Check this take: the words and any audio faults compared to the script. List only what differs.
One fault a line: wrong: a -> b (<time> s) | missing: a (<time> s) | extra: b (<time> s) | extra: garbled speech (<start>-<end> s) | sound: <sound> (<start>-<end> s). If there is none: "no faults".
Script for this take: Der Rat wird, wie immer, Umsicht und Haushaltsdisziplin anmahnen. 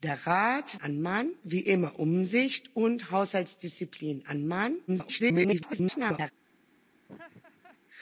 wrong: wird -> anmahnen (0.8 s)
extra: garbled speech (4.9-6.3 s)
sound: laugh (7.1-7.8 s)